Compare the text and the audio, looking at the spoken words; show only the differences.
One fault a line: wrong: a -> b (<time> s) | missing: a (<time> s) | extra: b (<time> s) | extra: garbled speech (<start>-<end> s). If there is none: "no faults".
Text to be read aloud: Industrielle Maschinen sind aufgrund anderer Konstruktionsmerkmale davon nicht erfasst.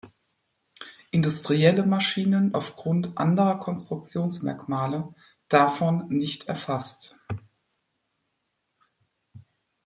missing: sind (2.5 s)